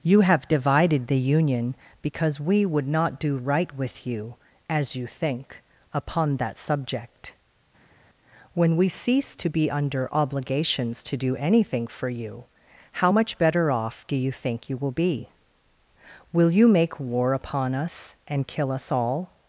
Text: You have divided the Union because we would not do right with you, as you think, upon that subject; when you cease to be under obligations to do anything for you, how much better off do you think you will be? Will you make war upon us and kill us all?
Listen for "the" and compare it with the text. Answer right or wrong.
right